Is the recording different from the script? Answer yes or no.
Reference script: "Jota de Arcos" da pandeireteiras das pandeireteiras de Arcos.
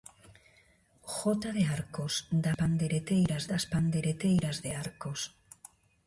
no